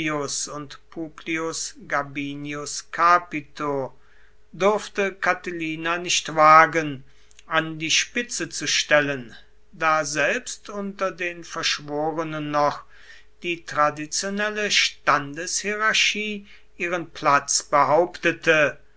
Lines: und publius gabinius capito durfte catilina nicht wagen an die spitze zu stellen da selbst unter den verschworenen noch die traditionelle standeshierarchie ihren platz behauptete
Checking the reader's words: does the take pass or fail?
pass